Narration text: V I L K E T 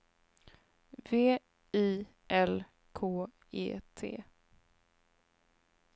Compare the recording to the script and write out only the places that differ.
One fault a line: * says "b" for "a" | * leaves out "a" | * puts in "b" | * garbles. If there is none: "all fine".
all fine